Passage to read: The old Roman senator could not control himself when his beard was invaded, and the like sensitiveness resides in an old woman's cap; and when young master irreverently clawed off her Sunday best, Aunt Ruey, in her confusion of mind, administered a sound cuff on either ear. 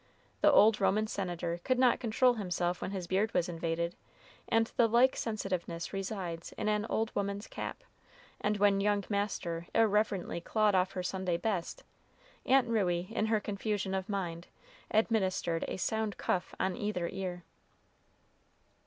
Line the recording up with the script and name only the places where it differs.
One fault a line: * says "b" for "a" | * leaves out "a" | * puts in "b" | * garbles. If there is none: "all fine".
all fine